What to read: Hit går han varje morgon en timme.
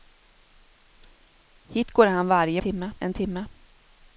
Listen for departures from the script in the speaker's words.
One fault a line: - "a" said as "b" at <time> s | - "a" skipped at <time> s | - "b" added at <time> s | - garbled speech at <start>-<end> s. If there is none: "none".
- "morgon" said as "timme" at 2.6 s